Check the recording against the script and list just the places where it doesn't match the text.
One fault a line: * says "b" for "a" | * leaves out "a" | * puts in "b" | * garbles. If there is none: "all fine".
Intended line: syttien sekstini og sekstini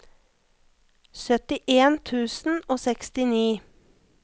* says "tusen" for "sekstini"